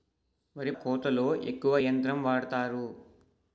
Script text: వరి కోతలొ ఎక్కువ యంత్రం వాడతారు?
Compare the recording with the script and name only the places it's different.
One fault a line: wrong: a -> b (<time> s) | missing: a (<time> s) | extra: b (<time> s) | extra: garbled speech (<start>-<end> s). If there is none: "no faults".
no faults